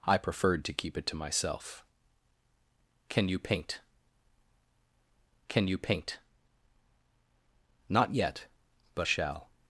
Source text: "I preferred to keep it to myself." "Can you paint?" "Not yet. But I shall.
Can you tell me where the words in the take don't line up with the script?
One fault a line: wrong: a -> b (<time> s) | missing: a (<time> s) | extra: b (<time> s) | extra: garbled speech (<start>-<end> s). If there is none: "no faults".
extra: can you paint (5.5 s)
missing: I (9.1 s)